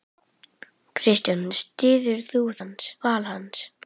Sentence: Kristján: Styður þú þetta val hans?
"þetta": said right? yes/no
no